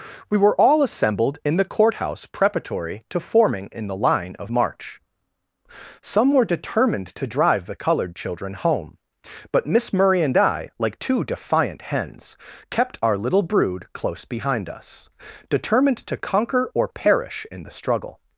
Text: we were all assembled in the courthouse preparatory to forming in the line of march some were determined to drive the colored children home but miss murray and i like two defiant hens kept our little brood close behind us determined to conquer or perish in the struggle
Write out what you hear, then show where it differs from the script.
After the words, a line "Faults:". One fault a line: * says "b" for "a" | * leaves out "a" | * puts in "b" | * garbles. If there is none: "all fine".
we were all assembled in the courthouse preparatory to forming in the line of march some were determined to drive the colored children home but miss murray and i like two defiant hens kept our little brood close behind us determined to conquer or perish in the struggle
Faults:
all fine